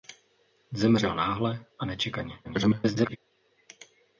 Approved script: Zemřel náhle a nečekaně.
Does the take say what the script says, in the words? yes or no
no